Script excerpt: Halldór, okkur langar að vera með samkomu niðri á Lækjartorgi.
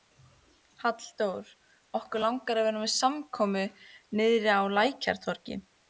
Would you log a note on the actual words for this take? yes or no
no